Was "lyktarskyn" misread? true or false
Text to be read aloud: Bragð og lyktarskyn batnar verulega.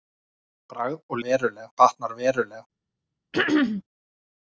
true